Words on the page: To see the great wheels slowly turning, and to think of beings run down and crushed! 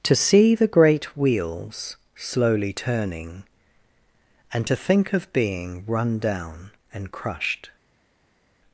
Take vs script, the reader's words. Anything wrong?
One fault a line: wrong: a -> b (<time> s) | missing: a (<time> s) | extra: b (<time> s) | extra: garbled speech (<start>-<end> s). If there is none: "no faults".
wrong: beings -> being (5.3 s)